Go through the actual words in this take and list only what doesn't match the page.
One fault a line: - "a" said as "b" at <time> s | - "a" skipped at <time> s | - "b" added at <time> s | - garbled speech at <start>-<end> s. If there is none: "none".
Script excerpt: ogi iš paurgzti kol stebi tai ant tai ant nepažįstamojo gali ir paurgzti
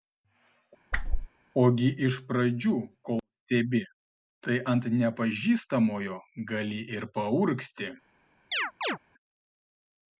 - "paurgzti" said as "pradžių" at 2.3 s
- "tai ant" skipped at 4.9 s